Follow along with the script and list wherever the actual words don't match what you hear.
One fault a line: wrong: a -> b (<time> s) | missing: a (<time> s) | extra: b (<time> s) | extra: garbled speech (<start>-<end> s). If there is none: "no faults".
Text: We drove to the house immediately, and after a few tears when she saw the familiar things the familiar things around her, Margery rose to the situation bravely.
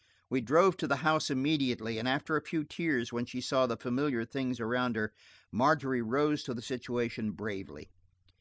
missing: the familiar things (4.6 s)